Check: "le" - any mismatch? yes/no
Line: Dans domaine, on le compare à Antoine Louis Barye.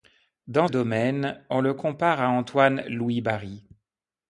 no